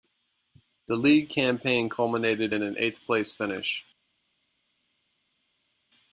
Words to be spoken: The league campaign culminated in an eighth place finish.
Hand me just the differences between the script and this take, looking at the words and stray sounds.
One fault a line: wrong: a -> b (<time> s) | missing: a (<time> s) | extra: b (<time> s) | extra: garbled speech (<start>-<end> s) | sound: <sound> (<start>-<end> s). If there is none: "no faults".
no faults